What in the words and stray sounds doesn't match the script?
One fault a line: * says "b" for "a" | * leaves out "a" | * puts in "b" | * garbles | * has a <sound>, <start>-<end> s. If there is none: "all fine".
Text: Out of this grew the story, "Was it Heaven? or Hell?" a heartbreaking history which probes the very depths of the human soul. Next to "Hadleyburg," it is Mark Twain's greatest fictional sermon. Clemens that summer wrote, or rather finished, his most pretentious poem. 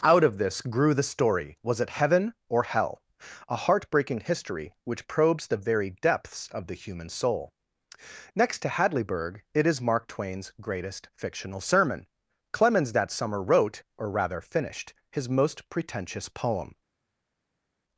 all fine